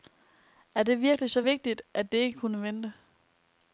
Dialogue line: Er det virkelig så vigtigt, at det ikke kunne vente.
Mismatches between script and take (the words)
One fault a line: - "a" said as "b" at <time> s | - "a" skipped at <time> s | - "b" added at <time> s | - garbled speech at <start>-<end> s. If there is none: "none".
none